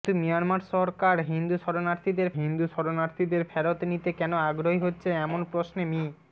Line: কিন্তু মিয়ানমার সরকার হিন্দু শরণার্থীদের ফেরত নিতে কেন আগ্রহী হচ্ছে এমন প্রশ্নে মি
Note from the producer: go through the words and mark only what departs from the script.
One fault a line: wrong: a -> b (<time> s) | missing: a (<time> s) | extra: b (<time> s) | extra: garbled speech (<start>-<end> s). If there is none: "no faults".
extra: হিন্দু শরণার্থীদের (2.4 s)